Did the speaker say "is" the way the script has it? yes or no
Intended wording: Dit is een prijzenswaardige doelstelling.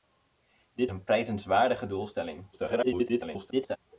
no